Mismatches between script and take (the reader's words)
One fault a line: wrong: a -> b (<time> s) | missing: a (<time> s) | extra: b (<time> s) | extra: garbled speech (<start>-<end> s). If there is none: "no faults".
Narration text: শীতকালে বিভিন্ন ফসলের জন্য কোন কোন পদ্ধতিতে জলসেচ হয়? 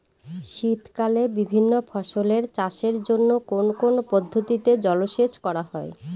extra: চাষের (2.6 s)
extra: করা (5.5 s)